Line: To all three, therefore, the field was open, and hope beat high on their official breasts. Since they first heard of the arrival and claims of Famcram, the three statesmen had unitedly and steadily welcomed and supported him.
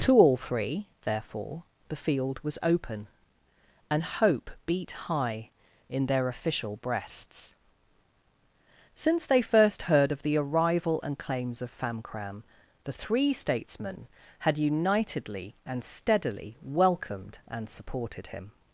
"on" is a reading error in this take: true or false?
true